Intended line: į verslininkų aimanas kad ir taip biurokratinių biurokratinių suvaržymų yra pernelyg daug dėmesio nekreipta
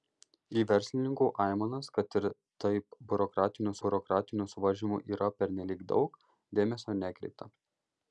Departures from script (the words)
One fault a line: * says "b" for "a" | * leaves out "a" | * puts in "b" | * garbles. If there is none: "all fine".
all fine